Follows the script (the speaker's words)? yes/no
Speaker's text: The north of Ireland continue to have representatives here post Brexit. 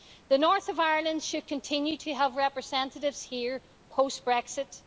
no